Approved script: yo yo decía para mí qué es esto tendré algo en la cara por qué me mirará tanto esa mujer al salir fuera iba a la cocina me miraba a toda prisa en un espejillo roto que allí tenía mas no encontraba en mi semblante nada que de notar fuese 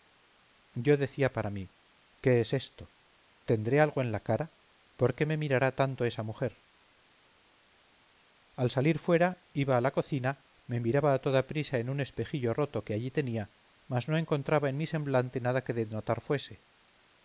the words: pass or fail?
fail